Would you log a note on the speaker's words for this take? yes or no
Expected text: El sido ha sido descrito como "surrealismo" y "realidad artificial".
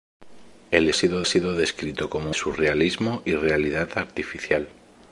no